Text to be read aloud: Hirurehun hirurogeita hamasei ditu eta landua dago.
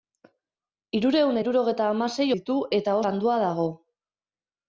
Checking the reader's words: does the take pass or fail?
pass